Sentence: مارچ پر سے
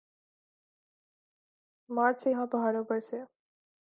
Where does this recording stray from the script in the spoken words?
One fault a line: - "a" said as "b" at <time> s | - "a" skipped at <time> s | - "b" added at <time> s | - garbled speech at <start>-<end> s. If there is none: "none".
- "سے یہاں پہاڑوں" added at 2.2 s